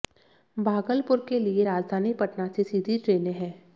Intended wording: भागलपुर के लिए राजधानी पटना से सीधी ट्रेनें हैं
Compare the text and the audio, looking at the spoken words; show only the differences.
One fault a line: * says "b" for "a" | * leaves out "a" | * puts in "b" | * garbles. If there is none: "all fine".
all fine